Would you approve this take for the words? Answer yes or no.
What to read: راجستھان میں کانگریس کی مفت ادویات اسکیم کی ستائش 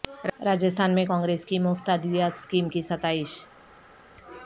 yes